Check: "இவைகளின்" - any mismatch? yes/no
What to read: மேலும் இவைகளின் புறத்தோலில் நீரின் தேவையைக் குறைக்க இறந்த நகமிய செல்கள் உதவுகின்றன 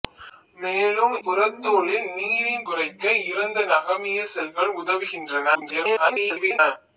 yes